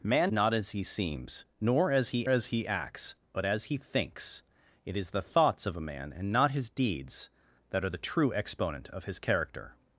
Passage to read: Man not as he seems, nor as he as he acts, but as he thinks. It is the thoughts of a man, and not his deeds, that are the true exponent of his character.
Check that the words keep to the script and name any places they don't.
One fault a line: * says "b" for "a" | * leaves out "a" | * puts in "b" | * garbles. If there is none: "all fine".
all fine